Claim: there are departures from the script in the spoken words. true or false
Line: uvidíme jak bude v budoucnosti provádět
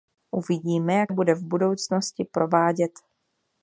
false